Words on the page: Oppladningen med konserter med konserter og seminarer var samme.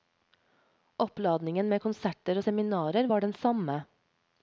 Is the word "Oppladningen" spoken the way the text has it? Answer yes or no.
yes